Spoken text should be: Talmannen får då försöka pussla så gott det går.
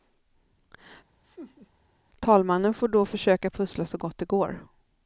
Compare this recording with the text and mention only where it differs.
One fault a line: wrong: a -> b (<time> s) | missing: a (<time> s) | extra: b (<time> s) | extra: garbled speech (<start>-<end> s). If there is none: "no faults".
no faults